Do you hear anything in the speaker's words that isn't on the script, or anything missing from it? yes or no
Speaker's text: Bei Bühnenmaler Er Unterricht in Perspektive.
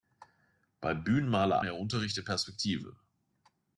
no